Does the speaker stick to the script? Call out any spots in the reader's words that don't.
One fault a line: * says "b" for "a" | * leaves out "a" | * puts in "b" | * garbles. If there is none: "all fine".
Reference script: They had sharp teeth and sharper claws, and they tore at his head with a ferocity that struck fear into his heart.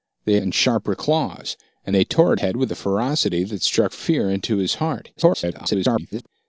* leaves out "had sharp teeth"
* leaves out "his"
* garbles